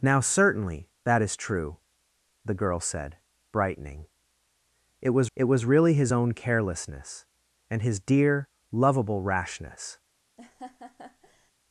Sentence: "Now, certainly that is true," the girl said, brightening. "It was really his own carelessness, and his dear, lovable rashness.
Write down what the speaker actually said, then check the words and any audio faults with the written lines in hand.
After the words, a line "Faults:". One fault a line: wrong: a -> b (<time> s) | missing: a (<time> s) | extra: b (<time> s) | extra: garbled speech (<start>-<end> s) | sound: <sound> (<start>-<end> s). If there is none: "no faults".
"Now, certainly that is true," the girl said, brightening. "It was it was really his own carelessness, and his dear, lovable rashness.
Faults:
extra: it was (5.3 s)
sound: laugh (10.4-11.5 s)